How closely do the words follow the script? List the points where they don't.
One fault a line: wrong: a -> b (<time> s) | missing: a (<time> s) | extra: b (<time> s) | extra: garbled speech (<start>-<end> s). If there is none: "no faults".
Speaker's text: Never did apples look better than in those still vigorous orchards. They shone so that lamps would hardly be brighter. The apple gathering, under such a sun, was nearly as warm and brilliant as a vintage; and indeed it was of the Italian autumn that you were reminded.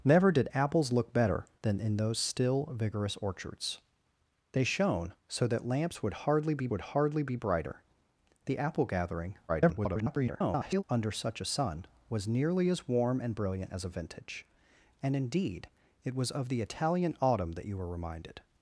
extra: would hardly be (6.7 s)
extra: garbled speech (9.5-10.8 s)